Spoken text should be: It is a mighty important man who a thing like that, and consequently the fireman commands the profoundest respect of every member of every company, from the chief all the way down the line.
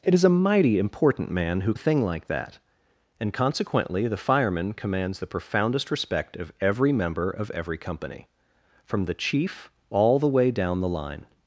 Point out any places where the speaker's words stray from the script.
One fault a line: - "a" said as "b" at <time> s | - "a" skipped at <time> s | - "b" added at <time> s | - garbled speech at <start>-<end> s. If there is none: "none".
none